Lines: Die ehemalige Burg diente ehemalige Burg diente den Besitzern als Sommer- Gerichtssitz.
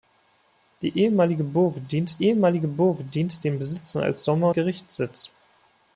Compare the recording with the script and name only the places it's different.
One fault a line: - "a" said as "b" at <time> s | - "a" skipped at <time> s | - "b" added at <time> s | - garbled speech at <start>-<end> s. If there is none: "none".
none